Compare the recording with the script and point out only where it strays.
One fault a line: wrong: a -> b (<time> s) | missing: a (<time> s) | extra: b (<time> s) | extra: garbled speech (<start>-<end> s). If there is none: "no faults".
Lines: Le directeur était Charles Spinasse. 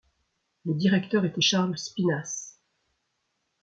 no faults